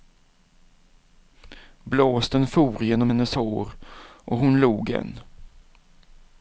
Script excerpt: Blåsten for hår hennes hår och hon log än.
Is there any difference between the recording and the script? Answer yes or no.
yes